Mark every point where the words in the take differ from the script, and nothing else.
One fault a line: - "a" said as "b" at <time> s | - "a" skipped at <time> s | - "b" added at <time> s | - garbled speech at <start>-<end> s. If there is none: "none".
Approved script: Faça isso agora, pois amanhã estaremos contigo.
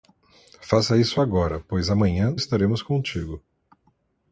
none